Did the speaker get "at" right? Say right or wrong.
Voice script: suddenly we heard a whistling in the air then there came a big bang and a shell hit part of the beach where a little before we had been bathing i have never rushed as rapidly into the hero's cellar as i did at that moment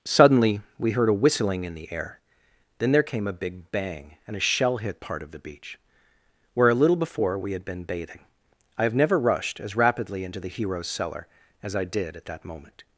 right